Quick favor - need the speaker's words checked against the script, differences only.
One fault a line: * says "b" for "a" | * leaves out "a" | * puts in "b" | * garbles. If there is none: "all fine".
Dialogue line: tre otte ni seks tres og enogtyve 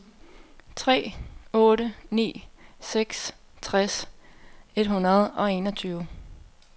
* puts in "et hundrede"